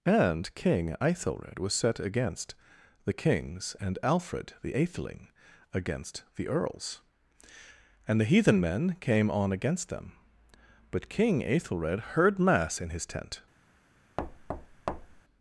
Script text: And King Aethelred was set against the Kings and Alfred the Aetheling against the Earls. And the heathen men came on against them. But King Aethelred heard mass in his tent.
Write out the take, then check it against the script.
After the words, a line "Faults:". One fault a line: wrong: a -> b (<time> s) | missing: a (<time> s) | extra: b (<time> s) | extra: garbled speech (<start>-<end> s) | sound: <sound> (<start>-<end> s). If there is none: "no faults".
And King Aethelred was set against the Kings and Alfred the Aetheling against the Earls. And the heathen men came on against them. But King Aethelred heard mass in his tent.
Faults:
sound: thud (14.2-15.2 s)